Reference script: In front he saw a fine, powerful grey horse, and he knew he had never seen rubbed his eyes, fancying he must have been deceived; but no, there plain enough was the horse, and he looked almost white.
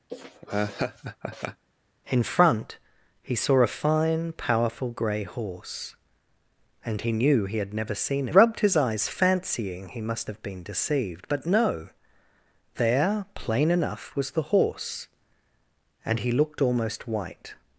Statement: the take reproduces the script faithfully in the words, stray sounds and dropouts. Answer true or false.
false